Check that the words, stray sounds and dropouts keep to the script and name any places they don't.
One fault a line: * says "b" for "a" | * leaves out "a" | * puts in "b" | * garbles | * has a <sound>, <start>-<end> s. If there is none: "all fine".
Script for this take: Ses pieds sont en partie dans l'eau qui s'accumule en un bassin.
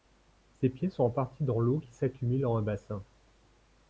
all fine